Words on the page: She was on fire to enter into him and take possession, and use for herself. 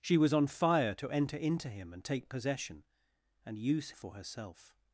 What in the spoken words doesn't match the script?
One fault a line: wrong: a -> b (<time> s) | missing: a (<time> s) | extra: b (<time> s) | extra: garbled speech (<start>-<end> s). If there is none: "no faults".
no faults